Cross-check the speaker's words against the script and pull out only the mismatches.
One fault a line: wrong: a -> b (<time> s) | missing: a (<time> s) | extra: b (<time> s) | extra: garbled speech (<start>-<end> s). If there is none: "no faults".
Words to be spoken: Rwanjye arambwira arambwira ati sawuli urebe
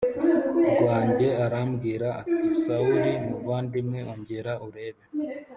missing: arambwira (2.1 s)
extra: muvandimwe ongera (3.3 s)